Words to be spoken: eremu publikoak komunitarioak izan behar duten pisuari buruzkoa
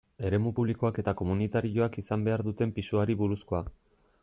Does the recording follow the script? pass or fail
fail